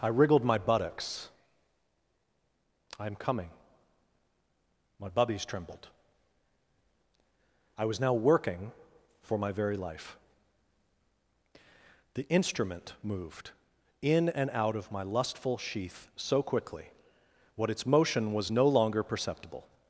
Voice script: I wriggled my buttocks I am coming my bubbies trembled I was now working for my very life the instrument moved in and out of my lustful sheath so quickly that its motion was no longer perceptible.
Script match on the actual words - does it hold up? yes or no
no